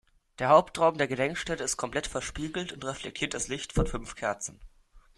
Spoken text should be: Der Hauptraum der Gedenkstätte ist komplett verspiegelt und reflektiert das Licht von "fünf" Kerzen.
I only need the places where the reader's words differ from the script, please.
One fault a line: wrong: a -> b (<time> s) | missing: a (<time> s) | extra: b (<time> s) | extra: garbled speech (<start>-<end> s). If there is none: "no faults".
no faults